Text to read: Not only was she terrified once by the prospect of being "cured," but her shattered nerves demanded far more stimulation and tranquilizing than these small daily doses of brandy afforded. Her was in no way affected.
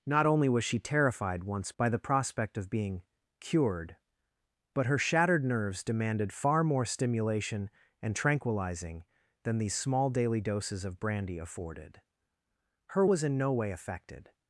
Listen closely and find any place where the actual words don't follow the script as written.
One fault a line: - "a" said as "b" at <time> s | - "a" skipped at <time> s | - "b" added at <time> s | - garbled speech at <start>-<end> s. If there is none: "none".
none